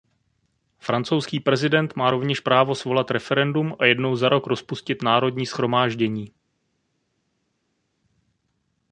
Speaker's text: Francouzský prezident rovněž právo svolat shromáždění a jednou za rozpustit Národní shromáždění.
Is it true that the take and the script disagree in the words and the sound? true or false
true